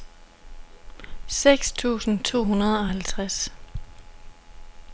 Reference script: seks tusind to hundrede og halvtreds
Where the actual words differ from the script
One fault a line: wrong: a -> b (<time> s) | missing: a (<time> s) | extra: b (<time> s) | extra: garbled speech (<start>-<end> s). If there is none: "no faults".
no faults